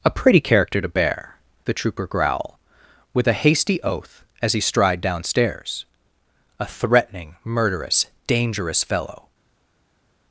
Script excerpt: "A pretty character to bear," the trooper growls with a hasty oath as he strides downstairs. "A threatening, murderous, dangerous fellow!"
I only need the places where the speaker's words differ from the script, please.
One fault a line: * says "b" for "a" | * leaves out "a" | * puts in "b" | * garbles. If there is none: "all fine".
* says "growl" for "growls"
* says "stride" for "strides"